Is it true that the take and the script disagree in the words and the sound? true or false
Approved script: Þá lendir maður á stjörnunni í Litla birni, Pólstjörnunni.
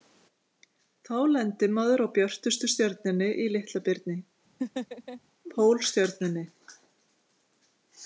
true